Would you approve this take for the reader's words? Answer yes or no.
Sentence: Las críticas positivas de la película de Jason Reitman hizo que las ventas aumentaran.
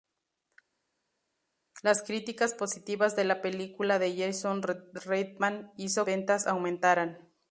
no